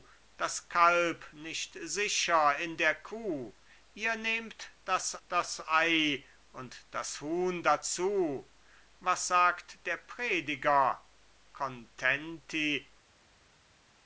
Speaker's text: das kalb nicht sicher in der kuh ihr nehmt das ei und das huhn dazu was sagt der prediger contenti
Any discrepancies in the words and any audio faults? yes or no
yes